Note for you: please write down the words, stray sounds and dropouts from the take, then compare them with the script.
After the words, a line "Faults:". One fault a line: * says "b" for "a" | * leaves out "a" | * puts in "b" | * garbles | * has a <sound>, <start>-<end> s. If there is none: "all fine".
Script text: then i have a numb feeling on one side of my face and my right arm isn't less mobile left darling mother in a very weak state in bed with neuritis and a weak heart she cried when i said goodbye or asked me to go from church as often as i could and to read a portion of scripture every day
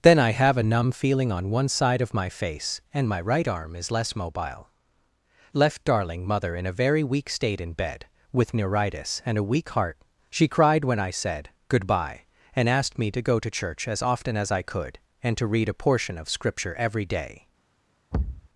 then i have a numb feeling on one side of my face and my right arm is less mobile left darling mother in a very weak state in bed with neuritis and a weak heart she cried when i said goodbye and asked me to go to church as often as i could and to read a portion of scripture every day
Faults:
* says "is" for "isn't"
* says "and" for "or"
* says "to" for "from"
* has a thud, 18.1-18.5 s